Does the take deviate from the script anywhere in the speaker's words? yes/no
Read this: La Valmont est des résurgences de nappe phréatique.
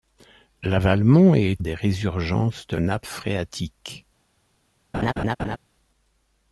no